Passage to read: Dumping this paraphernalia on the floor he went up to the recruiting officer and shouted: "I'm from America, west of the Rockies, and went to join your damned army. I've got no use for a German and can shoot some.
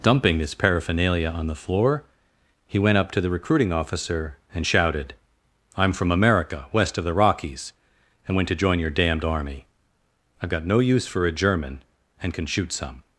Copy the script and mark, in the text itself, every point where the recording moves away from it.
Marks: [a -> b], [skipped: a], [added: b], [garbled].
Dumping this paraphernalia on the floor he went up to the recruiting officer and shouted: "I'm from America, west of the Rockies, and went to join your damned army. I've got no use for a German and can shoot some.